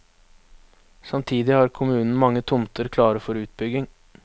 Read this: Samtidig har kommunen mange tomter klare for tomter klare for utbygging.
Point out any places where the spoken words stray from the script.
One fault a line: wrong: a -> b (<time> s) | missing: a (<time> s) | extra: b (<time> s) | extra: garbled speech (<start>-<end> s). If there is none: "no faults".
missing: tomter klare for (3.4 s)